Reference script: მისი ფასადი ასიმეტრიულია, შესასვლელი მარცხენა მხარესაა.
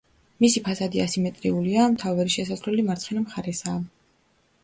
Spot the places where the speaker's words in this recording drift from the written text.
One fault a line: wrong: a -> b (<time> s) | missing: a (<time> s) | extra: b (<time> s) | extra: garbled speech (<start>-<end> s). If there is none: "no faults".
extra: მთავარი (1.9 s)